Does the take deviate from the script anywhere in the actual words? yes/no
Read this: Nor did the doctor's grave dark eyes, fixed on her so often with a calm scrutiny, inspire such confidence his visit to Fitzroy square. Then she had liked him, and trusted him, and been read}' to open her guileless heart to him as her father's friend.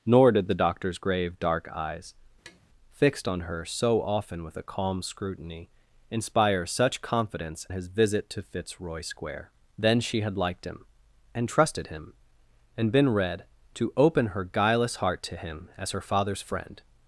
no